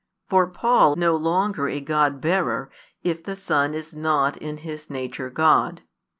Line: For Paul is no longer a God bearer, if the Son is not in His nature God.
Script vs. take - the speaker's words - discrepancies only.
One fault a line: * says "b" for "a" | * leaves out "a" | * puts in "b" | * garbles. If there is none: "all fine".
* leaves out "is"